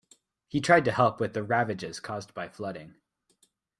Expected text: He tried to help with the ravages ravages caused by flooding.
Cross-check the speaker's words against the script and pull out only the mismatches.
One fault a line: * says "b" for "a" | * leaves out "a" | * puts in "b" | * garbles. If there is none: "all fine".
* leaves out "ravages"